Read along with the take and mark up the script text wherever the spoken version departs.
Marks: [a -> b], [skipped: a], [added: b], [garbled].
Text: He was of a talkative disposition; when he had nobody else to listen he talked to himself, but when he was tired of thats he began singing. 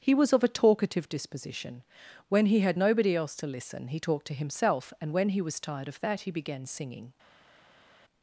He was of a talkative disposition; when he had nobody else to listen he talked to himself, [but -> and] when he was tired of [thats -> that] he began singing.